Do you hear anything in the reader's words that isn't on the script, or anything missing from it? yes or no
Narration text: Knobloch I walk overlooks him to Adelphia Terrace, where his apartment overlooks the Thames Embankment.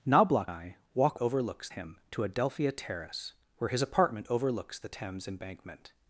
no